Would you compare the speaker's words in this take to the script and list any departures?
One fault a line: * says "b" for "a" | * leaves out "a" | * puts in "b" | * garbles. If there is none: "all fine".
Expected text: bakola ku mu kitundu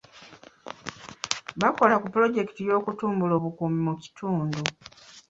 * puts in "pulojekiti y'okutumbula obukuumi"